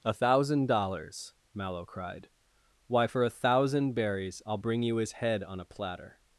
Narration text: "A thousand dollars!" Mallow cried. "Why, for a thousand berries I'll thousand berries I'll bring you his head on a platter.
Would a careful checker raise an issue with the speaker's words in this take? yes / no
yes